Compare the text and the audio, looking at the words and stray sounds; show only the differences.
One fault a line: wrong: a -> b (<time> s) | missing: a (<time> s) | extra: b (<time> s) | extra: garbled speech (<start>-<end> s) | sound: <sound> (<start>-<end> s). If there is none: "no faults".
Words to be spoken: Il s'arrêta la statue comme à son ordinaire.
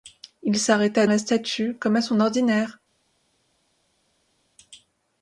no faults